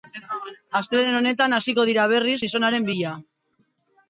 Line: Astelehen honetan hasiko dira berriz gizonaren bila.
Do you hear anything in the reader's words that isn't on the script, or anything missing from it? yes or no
no